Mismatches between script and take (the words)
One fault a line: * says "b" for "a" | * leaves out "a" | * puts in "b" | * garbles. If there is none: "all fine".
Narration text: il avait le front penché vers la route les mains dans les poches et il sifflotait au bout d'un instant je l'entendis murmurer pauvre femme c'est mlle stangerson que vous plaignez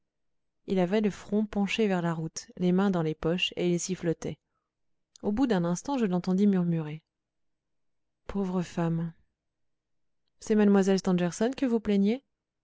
all fine